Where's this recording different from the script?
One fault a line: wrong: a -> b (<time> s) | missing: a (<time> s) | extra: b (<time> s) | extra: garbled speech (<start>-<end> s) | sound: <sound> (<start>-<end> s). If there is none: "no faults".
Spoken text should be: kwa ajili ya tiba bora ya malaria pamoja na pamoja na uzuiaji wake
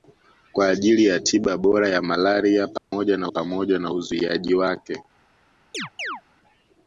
sound: dropout (2.8-2.9 s)
sound: chirp (5.7-6.2 s)